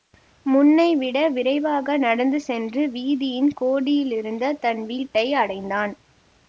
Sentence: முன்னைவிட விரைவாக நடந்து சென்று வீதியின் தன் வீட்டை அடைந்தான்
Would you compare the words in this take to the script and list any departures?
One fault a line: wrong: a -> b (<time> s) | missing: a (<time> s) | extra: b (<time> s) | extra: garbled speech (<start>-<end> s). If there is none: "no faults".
extra: கோடியிலிருந்த (3.5 s)